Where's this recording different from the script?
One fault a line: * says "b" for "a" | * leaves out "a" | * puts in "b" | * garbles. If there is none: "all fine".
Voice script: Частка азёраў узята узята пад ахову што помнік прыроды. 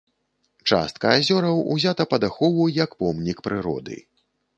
* leaves out "узята"
* says "як" for "што"